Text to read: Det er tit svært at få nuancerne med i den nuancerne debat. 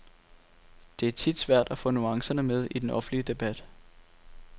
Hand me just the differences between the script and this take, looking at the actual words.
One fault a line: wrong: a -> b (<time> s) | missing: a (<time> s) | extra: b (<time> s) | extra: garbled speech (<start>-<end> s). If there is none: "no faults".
wrong: nuancerne -> offentlige (2.9 s)